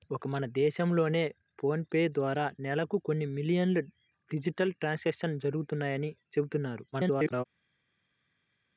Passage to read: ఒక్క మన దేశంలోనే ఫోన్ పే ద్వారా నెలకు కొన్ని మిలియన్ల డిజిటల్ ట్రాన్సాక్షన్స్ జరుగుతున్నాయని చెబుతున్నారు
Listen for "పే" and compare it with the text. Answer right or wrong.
right